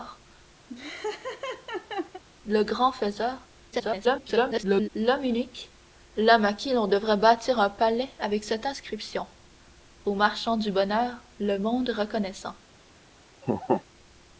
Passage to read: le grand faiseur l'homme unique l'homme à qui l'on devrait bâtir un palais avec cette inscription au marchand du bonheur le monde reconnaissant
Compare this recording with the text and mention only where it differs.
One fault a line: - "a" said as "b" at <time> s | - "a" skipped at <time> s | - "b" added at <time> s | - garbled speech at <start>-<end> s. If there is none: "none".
- garbled speech at 3.7-4.9 s